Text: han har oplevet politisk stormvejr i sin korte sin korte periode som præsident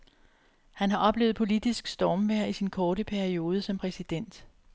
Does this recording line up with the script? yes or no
no